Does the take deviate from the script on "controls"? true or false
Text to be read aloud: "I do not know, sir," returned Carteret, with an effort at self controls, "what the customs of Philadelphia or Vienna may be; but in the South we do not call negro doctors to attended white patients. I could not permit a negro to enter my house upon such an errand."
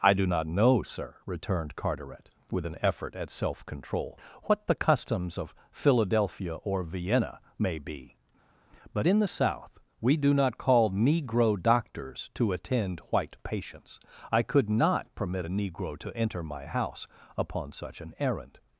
true